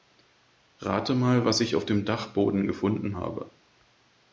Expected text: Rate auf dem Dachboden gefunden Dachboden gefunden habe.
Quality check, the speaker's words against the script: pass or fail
fail